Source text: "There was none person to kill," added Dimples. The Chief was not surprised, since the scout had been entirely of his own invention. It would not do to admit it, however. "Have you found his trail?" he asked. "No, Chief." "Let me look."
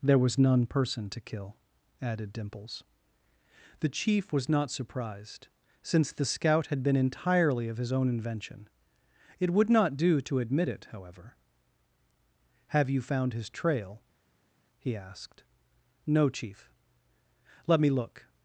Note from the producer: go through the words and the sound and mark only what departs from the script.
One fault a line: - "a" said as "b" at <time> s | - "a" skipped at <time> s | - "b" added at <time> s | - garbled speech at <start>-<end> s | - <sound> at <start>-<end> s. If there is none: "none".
none